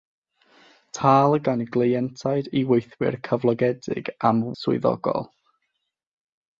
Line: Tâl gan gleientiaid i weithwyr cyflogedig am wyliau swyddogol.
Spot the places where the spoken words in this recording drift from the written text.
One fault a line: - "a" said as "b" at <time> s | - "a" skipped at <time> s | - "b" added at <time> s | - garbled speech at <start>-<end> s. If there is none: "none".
- "wyliau" skipped at 4.4 s